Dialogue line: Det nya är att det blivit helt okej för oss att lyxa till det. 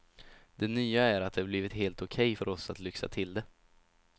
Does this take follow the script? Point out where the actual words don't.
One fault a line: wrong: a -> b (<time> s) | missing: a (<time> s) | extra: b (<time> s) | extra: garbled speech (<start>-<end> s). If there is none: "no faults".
no faults